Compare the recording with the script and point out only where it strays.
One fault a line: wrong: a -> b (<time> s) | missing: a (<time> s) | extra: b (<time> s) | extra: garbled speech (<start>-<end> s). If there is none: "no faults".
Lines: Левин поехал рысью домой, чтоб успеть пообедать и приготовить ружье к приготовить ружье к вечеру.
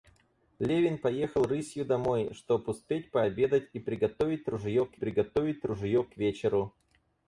no faults